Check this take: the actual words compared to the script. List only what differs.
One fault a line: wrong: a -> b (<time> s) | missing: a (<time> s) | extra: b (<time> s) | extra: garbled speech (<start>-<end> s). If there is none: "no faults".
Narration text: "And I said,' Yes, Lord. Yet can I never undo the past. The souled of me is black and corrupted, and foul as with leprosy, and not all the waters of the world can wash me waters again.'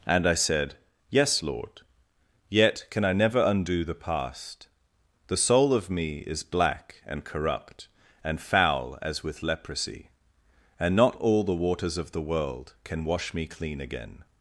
wrong: souled -> soul (5.4 s)
wrong: corrupted -> corrupt (7.2 s)
wrong: waters -> clean (13.5 s)